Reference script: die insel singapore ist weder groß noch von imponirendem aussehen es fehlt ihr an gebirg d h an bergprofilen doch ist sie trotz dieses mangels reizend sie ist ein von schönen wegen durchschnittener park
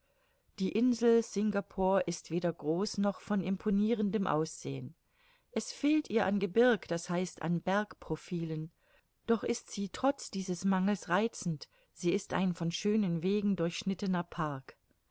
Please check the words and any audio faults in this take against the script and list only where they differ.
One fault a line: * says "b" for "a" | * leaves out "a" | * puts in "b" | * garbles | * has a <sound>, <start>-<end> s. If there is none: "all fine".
all fine